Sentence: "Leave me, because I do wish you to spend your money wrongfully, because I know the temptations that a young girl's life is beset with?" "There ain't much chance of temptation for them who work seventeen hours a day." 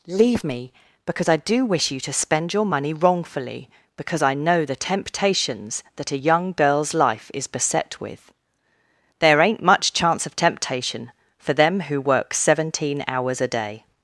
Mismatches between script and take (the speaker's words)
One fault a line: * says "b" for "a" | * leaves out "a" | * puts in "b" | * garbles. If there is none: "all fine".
all fine